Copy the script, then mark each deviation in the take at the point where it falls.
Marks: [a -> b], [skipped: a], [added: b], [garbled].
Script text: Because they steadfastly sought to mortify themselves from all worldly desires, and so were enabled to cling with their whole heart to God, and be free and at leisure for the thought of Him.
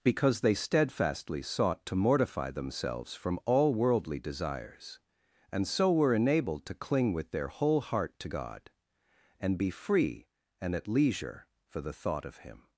Because they steadfastly sought to mortify themselves from all worldly desires, and so were enabled to cling with their whole heart to God, and be free and at leisure for the thought of Him.